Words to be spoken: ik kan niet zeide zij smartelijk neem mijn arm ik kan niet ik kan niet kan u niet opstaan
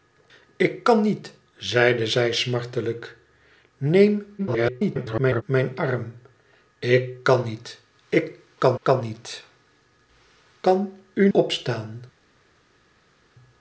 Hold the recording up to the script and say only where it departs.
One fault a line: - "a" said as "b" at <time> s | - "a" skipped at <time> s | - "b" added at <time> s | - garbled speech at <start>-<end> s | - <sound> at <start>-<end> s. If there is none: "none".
- garbled speech at 4.4-5.4 s
- "kan" added at 8.8 s
- "niet" skipped at 11.3 s